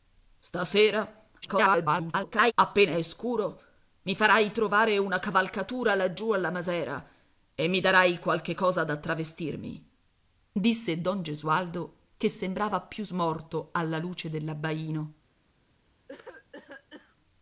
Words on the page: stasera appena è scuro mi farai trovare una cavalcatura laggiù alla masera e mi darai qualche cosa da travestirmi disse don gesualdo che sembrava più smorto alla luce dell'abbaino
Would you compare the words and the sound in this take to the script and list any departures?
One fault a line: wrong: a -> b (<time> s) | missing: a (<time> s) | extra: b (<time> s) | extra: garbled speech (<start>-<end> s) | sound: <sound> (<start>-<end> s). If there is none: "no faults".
extra: garbled speech (1.4-2.5 s)
sound: cough (16.1-17.2 s)